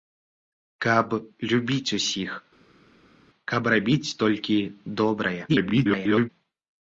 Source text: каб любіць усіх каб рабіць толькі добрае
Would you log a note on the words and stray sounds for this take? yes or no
yes